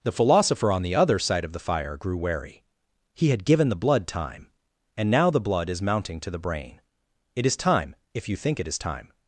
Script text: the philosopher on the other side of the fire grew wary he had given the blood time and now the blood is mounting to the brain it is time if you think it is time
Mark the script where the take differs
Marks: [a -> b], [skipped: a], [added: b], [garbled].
the philosopher on the other side of the fire grew wary he had given the blood time and now the blood is mounting to the brain it is time if you think it is time